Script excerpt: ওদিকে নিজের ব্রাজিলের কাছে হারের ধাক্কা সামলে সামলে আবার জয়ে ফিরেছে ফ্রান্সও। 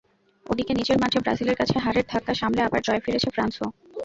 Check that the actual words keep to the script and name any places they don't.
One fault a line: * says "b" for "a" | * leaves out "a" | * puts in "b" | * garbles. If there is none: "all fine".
* puts in "মাঠে"
* leaves out "সামলে"